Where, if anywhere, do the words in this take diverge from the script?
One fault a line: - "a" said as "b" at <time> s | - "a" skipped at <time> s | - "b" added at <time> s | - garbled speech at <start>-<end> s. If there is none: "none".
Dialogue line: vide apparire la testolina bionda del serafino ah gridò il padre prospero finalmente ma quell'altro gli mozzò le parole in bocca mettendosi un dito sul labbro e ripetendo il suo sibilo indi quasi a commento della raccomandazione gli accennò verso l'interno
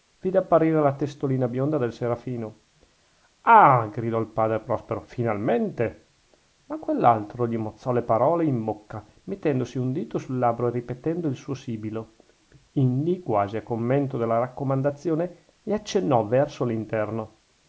none